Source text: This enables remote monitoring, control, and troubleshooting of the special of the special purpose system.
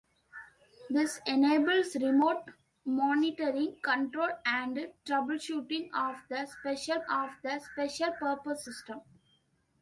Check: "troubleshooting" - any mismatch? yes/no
no